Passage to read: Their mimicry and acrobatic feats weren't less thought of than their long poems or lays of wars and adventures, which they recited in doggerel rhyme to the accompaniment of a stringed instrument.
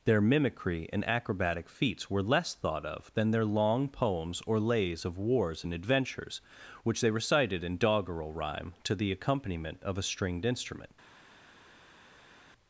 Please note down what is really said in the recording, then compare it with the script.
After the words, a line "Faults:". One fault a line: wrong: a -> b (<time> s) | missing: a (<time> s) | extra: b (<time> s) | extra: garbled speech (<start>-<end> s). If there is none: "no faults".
Their mimicry and acrobatic feats were less thought of than their long poems or lays of wars and adventures, which they recited in doggerel rhyme to the accompaniment of a stringed instrument.
Faults:
wrong: weren't -> were (2.1 s)